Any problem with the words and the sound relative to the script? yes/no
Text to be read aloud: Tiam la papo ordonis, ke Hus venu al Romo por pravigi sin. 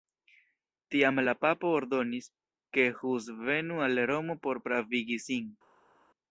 no